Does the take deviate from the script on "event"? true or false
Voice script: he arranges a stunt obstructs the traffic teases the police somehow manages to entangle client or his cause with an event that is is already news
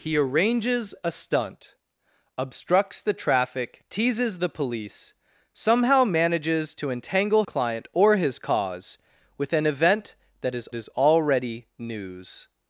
false